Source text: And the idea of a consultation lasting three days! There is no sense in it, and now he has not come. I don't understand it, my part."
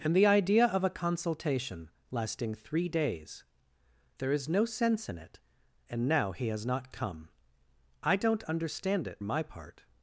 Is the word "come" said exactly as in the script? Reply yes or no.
yes